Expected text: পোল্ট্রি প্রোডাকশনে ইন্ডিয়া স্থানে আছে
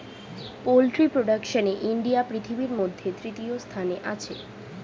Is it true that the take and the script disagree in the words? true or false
true